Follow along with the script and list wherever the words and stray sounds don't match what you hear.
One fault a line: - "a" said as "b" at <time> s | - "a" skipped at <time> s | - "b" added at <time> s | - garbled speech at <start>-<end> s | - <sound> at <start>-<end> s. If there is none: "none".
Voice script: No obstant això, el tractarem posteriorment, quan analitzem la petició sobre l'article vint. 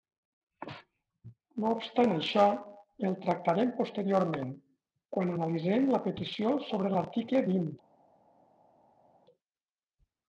none